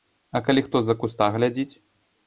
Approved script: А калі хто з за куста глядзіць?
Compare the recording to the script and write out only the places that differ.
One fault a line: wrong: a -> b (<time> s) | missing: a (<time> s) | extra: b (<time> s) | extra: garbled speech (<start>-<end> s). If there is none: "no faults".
no faults